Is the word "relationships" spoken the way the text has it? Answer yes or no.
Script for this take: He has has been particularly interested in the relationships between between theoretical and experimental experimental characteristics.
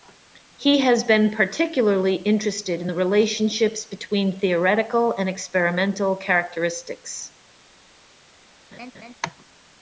yes